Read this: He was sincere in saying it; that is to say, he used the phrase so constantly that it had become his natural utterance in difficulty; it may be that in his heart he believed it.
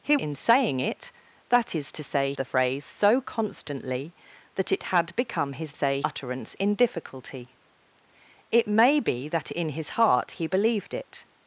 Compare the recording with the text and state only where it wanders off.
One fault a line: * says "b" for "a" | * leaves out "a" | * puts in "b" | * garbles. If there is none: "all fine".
* leaves out "was sincere"
* leaves out "he used"
* says "say" for "natural"